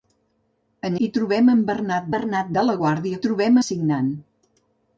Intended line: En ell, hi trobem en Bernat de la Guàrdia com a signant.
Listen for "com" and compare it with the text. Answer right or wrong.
wrong